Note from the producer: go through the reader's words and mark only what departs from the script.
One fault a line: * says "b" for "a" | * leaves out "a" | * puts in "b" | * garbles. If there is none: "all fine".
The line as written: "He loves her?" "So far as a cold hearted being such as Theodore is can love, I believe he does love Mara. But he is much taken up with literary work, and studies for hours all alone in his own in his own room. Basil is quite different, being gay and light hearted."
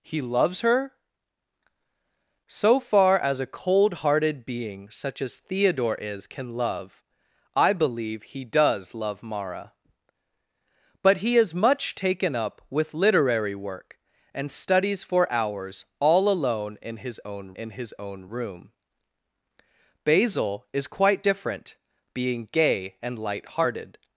all fine